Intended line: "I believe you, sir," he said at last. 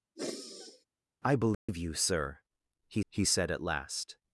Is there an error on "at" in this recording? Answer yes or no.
no